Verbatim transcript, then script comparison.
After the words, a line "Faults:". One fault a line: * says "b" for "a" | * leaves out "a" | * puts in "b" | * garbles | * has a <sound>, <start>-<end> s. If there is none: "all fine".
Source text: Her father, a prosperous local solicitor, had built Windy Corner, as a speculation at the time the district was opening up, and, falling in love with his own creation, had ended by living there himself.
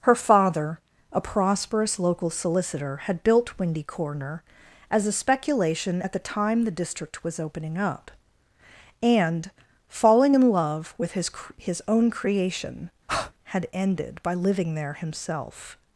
Her father, a prosperous local solicitor, had built Windy Corner, as a speculation at the time the district was opening up, and, falling in love with his his own creation, had ended by living there himself.
Faults:
* puts in "his"
* has a breath, 13.1-13.3 s